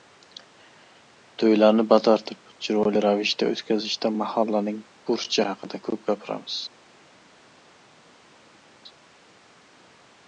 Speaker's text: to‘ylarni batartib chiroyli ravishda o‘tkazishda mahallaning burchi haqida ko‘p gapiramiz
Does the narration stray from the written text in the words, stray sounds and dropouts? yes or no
no